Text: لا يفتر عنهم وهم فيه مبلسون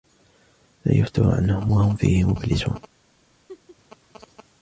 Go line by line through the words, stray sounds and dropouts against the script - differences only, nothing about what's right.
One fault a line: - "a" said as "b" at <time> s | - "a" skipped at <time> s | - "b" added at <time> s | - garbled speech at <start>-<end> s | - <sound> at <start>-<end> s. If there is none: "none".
- laugh at 3.5-3.8 s